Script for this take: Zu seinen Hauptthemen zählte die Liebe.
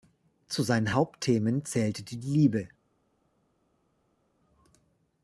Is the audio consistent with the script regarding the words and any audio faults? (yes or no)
yes